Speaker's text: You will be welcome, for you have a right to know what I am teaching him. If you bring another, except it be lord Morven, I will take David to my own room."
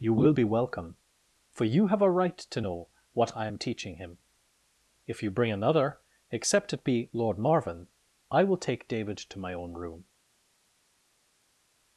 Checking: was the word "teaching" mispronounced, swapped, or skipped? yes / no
no